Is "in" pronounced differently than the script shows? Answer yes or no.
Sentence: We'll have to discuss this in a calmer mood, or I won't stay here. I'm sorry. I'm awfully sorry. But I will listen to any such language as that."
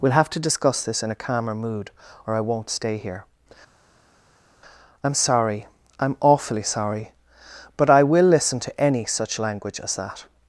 no